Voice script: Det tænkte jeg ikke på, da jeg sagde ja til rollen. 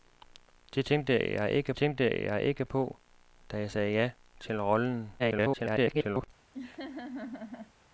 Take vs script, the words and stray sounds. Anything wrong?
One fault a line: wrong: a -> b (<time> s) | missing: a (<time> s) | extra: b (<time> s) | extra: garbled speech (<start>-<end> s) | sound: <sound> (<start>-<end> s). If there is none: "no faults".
extra: tænkte jeg ikke (1.8 s)
extra: garbled speech (5.2-6.3 s)
sound: laugh (6.5-7.7 s)